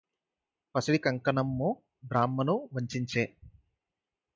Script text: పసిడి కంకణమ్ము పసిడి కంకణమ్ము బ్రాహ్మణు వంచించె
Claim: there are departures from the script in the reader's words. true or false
true